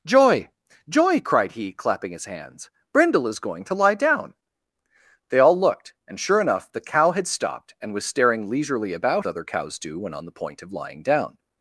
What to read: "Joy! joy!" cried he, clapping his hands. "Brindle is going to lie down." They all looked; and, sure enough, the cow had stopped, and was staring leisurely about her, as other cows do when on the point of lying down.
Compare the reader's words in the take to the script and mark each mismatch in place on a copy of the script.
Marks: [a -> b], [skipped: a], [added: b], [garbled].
"Joy! joy!" cried he, clapping his hands. "Brindle is going to lie down." They all looked; and, sure enough, the cow had stopped, and was staring leisurely about [skipped: her, as] other cows do when on the point of lying down.